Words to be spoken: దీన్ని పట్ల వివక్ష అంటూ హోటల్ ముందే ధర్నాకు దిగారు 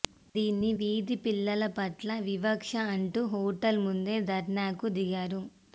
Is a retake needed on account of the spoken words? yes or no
yes